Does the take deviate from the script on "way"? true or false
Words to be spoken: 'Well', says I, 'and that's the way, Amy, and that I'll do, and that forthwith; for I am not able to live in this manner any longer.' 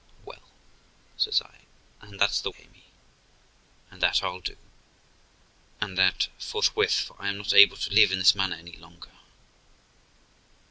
true